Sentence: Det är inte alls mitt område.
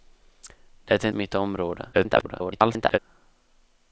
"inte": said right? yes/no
no